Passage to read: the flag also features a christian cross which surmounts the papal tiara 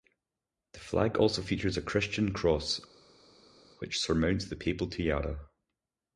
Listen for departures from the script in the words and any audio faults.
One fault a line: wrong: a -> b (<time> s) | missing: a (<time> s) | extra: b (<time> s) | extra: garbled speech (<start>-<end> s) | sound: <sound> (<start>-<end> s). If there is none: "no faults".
no faults